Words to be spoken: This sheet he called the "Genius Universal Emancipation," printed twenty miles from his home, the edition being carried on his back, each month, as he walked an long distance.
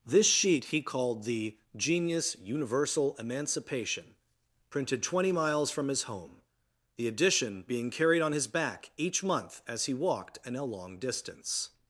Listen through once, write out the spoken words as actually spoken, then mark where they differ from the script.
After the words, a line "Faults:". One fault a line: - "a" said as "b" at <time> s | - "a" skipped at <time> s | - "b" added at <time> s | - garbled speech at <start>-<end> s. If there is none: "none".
This sheet he called the "Genius Universal Emancipation," printed twenty miles from his home, the edition being carried on his back, each month, as he walked an long distance.
Faults:
none